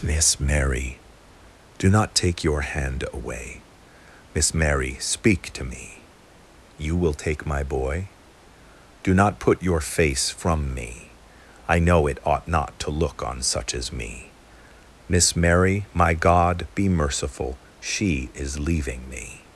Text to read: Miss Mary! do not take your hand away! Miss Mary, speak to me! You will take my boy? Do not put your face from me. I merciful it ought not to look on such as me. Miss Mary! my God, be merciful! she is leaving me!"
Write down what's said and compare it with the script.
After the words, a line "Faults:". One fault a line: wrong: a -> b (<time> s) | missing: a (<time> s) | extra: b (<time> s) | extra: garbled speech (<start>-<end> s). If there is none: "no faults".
Miss Mary! do not take your hand away! Miss Mary, speak to me! You will take my boy? Do not put your face from me. I know it ought not to look on such as me. Miss Mary! my God, be merciful! she is leaving me!"
Faults:
wrong: merciful -> know (11.8 s)